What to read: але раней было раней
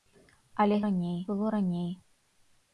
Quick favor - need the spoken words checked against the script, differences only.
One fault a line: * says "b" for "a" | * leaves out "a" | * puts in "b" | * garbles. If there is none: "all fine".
all fine